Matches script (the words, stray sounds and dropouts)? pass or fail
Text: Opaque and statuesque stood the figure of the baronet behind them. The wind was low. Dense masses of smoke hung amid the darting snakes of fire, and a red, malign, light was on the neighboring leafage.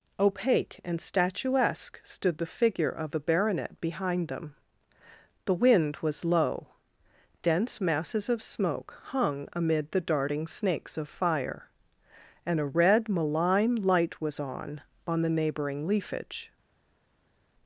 fail